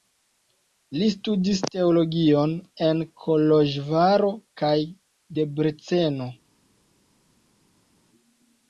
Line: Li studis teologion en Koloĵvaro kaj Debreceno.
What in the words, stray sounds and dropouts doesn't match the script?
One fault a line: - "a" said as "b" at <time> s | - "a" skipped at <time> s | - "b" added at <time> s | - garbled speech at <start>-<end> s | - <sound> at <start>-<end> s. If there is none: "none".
none